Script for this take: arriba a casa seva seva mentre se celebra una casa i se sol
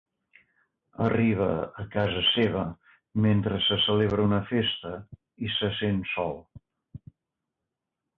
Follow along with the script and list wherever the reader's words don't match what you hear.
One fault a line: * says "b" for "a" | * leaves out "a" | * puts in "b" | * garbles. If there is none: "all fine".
* leaves out "seva"
* says "festa" for "casa"
* puts in "sent"